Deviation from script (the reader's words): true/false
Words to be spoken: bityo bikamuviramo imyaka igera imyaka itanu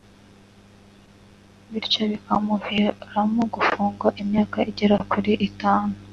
true